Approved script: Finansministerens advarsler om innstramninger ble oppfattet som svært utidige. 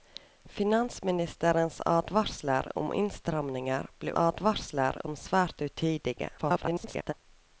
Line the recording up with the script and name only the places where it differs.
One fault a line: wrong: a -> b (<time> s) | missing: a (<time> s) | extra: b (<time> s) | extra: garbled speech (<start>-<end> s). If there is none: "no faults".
wrong: oppfattet -> advarsler (4.1 s)
extra: garbled speech (6.4-7.1 s)